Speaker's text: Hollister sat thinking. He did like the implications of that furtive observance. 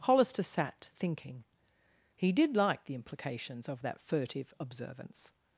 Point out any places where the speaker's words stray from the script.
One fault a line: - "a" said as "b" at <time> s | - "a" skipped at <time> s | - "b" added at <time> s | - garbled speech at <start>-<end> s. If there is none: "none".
none